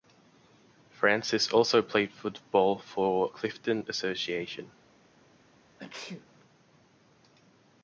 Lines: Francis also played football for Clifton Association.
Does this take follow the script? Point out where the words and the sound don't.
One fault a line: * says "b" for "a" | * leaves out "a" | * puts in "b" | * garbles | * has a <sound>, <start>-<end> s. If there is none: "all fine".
* has a sneeze, 5.8-6.3 s